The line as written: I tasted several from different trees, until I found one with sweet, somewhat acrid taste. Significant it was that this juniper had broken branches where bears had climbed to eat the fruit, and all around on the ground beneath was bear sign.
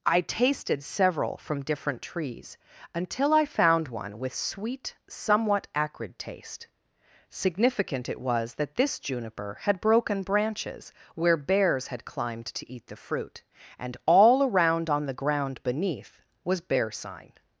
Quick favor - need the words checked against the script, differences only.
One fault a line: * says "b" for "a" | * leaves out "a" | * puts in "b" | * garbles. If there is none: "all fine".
all fine